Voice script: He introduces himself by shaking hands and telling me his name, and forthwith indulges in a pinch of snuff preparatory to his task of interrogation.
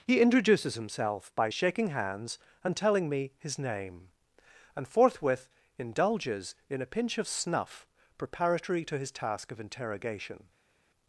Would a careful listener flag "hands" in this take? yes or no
no